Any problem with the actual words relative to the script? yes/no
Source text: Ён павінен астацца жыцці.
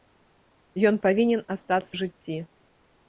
no